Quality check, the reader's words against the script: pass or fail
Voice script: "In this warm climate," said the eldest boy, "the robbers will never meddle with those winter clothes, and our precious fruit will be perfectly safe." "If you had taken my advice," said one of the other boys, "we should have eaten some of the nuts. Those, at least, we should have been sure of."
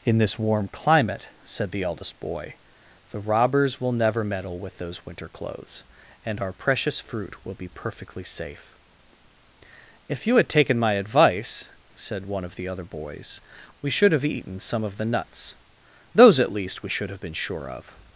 pass